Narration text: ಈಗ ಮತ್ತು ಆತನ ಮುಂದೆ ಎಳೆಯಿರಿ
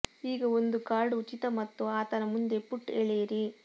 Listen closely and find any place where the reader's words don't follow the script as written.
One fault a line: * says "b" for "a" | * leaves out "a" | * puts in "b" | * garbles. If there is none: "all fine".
* puts in "ಒಂದು ಕಾರ್ಡ್ ಉಚಿತ"
* puts in "ಪುಟ್"